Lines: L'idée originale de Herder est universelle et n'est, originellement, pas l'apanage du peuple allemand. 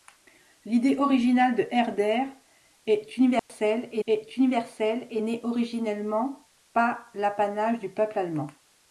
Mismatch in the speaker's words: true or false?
true